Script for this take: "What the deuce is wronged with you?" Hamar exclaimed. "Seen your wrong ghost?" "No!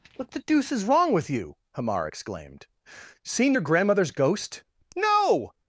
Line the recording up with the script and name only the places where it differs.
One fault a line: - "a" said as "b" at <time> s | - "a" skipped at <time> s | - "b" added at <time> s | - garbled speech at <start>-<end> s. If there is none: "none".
- "wronged" said as "wrong" at 0.8 s
- "wrong" said as "grandmother's" at 3.6 s